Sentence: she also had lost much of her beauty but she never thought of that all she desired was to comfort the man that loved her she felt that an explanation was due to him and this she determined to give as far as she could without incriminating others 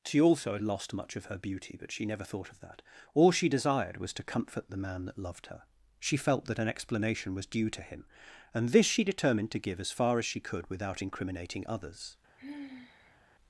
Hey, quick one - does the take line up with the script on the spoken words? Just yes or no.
yes